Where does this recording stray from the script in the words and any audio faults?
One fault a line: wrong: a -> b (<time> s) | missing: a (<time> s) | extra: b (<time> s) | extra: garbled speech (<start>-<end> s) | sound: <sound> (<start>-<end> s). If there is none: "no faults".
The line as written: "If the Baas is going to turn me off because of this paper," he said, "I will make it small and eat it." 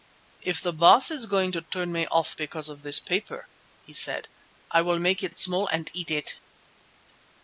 extra: it (5.3 s)